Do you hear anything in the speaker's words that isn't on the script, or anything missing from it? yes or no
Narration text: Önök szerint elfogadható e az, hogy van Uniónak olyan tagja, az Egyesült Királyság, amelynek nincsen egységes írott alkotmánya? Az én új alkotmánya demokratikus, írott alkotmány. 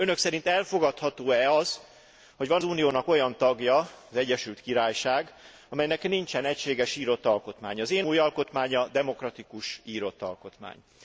no